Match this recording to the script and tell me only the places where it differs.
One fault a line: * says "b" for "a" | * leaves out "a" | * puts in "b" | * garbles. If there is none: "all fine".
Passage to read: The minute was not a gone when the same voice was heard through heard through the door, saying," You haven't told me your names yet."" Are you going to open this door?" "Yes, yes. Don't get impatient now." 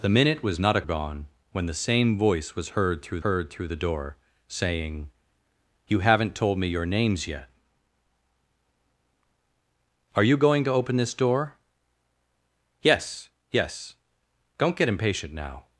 all fine